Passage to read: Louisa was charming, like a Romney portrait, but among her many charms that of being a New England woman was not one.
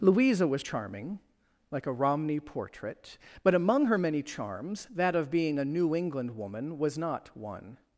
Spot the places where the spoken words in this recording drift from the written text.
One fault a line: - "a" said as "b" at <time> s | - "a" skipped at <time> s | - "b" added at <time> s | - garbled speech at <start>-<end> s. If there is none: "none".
none